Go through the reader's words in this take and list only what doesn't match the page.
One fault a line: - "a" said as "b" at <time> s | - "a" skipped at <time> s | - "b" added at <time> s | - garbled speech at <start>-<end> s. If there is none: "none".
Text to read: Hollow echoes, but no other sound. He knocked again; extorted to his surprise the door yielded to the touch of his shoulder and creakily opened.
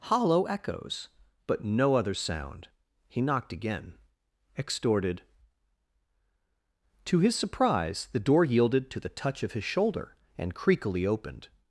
none